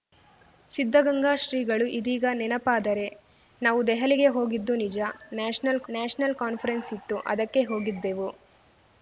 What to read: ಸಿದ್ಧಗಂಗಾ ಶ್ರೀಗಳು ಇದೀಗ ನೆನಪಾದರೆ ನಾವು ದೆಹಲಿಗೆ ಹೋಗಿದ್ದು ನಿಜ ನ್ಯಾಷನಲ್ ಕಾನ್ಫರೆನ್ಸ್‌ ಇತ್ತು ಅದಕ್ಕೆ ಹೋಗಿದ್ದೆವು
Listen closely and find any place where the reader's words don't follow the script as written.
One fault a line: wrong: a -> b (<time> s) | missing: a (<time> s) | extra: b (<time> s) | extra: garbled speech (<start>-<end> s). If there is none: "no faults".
extra: ನ್ಯಾಷನಲ್ (5.9 s)